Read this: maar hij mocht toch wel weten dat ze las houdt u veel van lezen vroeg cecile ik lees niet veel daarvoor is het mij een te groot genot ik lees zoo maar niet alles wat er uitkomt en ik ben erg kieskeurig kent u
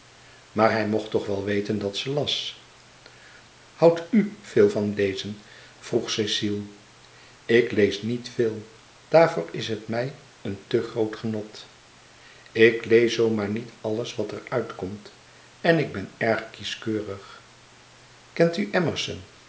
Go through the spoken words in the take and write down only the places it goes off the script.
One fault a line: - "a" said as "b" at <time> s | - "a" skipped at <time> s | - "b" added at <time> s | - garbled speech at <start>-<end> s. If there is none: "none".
none